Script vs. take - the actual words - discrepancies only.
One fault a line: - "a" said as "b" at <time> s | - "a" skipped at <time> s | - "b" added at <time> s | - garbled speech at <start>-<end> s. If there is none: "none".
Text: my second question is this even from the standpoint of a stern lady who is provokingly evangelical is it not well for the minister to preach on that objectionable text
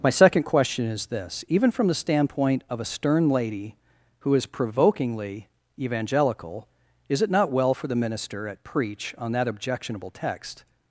- "to" said as "at" at 8.5 s